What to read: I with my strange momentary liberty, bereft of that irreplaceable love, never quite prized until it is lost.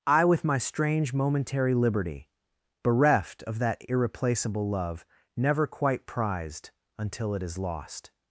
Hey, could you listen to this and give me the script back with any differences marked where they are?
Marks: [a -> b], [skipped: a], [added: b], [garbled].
I with my strange momentary liberty, bereft of that irreplaceable love, never quite prized until it is lost.